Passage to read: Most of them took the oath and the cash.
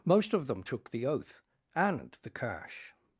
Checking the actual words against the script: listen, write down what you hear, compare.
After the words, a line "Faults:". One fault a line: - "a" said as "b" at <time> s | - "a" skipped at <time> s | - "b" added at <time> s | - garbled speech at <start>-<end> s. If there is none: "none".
Most of them took the oath and the cash.
Faults:
none